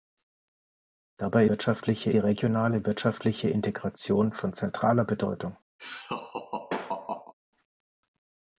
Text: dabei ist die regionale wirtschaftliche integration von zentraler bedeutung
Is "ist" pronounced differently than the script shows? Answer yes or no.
yes